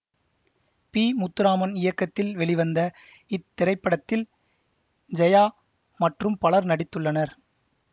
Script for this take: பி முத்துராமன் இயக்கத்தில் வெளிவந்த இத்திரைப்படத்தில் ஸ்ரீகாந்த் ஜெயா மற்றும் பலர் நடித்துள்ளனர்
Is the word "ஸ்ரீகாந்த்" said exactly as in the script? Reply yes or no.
no